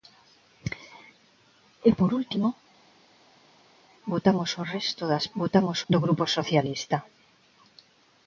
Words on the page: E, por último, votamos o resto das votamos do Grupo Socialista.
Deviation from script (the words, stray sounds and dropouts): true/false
false